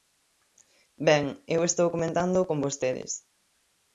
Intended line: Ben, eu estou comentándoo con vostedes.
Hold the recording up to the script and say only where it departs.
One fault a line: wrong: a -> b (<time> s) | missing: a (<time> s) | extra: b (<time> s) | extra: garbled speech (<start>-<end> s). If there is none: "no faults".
no faults